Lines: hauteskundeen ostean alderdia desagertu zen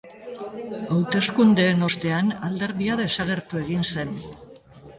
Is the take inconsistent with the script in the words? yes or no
yes